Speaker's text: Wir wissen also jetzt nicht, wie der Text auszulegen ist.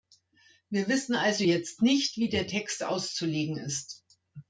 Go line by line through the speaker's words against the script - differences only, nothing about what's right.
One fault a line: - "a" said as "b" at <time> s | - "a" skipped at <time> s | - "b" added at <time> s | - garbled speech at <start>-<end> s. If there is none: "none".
none